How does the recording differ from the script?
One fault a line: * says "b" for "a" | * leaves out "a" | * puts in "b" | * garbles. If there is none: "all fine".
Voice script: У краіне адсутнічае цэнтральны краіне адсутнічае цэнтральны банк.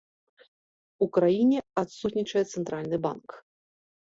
* leaves out "краіне адсутнічае цэнтральны"